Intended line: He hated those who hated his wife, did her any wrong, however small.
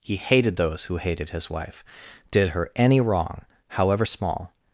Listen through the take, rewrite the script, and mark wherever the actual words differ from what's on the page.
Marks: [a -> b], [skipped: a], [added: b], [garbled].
He hated those who hated his wife, did her any wrong, however small.